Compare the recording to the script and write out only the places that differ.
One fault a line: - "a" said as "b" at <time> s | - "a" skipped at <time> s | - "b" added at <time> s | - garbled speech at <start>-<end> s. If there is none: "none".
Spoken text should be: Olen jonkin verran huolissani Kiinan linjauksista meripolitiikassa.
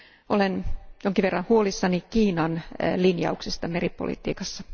none